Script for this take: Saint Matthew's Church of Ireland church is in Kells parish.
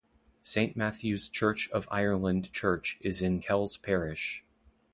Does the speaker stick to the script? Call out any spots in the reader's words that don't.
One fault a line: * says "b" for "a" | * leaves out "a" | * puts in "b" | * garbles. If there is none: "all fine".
all fine